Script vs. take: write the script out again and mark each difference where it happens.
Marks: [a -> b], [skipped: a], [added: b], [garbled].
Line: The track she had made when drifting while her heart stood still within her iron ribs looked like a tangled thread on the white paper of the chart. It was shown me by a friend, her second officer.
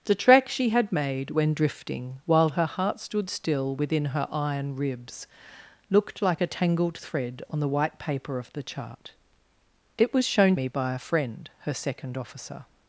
The track she had made when drifting while her heart stood still within her iron ribs looked like a tangled thread on the white paper of the chart. It was shown me by a friend, her second officer.